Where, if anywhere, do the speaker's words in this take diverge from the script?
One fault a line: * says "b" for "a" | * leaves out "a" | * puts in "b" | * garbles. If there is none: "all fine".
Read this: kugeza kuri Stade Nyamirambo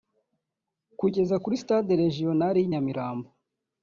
* puts in "Regional y'i"